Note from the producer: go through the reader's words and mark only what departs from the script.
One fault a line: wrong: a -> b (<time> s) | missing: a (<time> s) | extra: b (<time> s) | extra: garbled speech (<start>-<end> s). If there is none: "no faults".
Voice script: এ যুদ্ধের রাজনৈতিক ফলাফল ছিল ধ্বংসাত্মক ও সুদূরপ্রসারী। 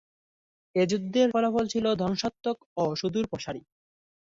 missing: রাজনৈতিক (1.3 s)